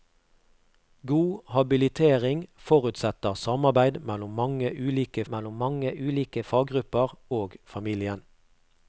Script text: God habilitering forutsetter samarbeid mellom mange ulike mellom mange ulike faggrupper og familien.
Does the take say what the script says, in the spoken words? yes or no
yes